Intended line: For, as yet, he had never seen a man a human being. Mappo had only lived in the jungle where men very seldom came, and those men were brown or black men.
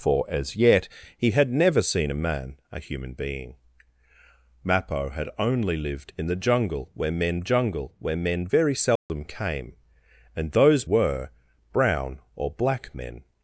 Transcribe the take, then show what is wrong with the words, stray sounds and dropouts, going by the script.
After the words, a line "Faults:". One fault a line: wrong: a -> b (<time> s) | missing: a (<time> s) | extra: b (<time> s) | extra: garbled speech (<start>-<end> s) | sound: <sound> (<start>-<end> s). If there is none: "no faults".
For, as yet, he had never seen a man a human being. Mappo had only lived in the jungle where men jungle where men very seldom came, and those were brown or black men.
Faults:
extra: jungle where men (7.4 s)
sound: dropout (9.0-9.1 s)
missing: men (10.9 s)